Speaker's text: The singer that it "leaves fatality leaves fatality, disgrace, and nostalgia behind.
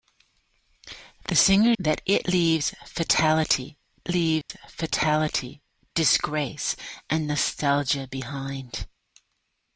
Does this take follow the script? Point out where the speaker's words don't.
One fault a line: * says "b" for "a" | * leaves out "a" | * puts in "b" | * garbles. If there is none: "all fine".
all fine